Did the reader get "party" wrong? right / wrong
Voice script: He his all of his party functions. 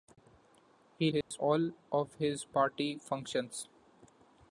right